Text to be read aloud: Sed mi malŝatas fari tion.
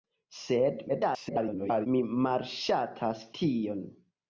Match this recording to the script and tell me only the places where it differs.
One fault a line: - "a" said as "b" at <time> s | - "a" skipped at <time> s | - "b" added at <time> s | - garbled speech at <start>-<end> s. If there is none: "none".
- garbled speech at 0.9-1.9 s
- "fari" skipped at 3.3 s